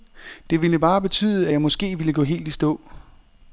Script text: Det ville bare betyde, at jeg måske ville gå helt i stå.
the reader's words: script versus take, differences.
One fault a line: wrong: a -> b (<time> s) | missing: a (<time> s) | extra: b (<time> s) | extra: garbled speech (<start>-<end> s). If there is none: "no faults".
no faults